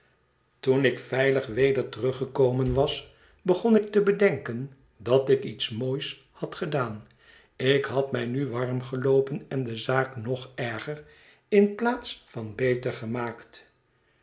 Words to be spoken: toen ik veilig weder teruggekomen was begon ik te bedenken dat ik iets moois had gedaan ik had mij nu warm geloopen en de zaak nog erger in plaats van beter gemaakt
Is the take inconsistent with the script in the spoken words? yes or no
no